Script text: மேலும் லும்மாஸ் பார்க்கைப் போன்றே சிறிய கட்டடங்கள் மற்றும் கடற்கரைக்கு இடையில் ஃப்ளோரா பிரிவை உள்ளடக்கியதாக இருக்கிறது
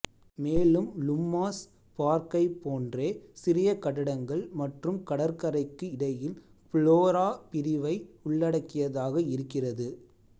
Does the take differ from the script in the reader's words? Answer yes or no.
no